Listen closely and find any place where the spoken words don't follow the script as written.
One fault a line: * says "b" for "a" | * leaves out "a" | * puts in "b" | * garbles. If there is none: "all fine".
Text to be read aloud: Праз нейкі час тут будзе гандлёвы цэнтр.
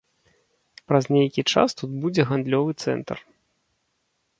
all fine